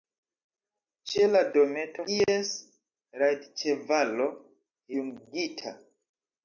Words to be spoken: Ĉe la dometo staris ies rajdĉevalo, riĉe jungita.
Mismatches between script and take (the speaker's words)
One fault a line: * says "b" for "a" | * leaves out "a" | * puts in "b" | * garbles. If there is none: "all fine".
* leaves out "staris"
* leaves out "riĉe"